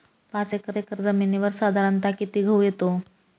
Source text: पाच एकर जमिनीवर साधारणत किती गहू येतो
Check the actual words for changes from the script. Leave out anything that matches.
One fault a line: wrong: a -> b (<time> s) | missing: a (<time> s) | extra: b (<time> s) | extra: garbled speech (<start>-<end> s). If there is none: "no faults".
extra: एकर (0.8 s)